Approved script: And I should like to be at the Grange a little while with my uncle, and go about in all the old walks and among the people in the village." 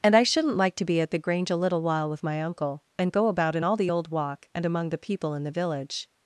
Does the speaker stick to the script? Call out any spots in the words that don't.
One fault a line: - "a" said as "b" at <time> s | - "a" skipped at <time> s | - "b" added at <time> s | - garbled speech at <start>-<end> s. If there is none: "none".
- "should" said as "shouldn't" at 0.2 s
- "walks" said as "walk" at 4.1 s